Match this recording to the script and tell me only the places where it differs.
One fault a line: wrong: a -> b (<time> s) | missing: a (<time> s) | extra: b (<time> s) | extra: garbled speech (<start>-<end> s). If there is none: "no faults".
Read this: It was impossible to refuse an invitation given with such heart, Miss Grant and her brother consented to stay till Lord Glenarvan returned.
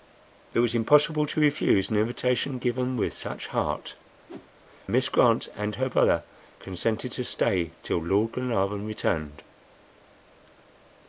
no faults